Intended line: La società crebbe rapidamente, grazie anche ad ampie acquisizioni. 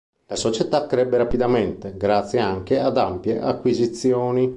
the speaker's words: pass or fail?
pass